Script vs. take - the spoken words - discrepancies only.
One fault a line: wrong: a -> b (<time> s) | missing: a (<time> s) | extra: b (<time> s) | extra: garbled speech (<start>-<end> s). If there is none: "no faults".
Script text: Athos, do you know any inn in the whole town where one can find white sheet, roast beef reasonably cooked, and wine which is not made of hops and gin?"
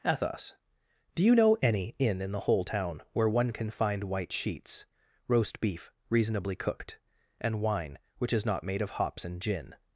wrong: sheet -> sheets (4.3 s)